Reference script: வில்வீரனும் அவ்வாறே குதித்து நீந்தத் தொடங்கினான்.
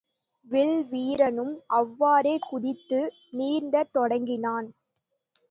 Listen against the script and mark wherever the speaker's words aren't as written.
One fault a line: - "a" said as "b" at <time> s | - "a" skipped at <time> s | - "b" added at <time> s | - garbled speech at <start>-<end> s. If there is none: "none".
none